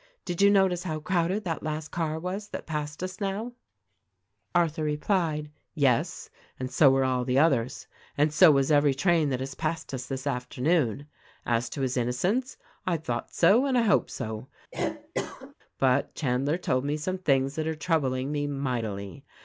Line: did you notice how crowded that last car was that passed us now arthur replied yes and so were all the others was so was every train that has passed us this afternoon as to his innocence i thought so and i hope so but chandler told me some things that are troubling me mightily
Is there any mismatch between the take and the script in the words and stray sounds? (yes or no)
yes